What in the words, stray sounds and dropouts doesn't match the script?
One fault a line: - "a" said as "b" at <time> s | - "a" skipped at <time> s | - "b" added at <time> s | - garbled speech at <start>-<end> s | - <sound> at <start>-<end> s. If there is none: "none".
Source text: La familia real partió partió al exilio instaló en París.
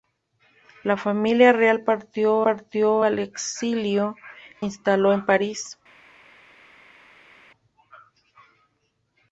none